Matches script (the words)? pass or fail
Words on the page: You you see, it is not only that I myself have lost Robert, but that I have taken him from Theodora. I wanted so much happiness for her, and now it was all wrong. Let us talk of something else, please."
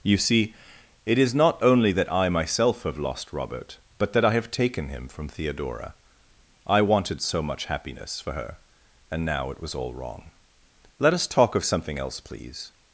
fail